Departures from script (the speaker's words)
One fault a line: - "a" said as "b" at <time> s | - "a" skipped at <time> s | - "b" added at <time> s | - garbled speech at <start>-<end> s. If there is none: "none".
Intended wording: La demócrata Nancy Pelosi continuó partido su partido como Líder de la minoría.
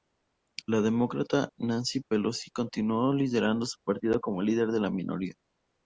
- "partido" said as "liderando" at 3.1 s